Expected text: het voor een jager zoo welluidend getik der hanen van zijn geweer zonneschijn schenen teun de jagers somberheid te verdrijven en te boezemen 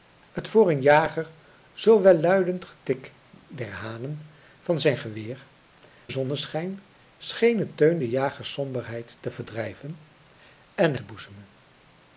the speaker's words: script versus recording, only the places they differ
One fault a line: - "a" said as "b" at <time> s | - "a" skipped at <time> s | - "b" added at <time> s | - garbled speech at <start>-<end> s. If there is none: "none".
none